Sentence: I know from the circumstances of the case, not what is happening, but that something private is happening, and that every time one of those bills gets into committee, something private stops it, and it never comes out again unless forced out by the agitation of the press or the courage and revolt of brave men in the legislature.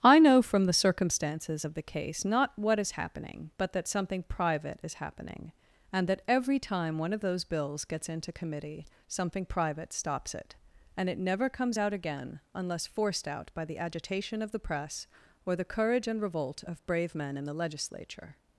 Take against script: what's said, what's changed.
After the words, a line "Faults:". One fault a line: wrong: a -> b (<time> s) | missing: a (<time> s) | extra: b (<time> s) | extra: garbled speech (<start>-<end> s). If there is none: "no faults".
I know from the circumstances of the case, not what is happening, but that something private is happening, and that every time one of those bills gets into committee, something private stops it, and it never comes out again unless forced out by the agitation of the press or the courage and revolt of brave men in the legislature.
Faults:
no faults